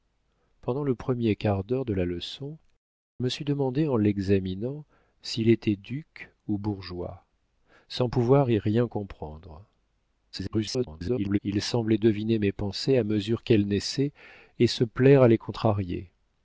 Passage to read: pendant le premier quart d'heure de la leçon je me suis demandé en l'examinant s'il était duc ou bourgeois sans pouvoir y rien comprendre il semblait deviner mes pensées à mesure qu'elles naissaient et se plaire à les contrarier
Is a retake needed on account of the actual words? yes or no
yes